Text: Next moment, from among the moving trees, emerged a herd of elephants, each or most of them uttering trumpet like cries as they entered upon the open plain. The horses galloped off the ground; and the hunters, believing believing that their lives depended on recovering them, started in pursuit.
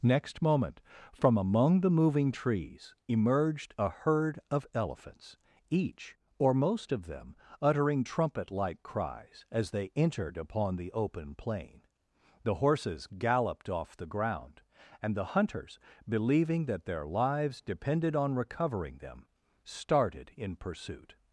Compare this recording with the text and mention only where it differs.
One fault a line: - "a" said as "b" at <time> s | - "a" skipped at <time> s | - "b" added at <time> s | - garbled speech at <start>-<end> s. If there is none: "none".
- "believing" skipped at 16.7 s